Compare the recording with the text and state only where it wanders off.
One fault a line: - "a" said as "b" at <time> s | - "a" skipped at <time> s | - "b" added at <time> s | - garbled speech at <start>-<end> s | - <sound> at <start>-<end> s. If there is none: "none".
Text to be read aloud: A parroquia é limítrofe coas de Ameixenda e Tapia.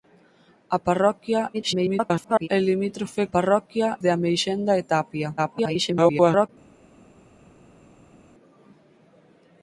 - garbled speech at 1.5-2.5 s
- "coas" said as "parroquia" at 3.3 s
- garbled speech at 5.4-6.5 s